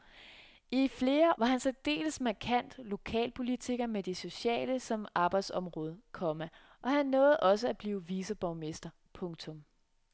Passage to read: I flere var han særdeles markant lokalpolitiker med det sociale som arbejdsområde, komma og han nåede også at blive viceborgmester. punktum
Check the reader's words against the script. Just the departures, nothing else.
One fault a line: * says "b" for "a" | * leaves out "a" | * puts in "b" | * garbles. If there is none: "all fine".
all fine